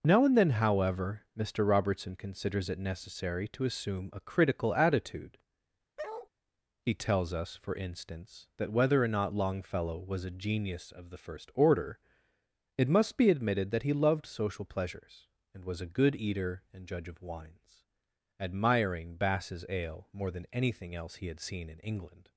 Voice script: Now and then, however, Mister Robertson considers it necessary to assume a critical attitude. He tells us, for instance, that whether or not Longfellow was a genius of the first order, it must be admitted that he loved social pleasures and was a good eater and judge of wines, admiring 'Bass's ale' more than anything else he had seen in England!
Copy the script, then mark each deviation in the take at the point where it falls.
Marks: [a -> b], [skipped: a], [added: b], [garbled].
Now and then, however, Mister Robertson considers it necessary to assume a critical attitude. He tells us, for instance, that whether or not Longfellow was a genius of the first order, it must be admitted that he loved social pleasures and was a good eater and judge of wines, admiring 'Bass's ale' more than anything else he had seen in England!